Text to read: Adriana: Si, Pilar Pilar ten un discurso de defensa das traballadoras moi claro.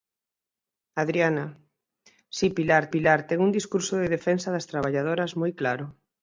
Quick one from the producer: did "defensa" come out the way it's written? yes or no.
yes